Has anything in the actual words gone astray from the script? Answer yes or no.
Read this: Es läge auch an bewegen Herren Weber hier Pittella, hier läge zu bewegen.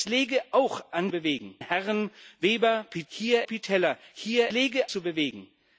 no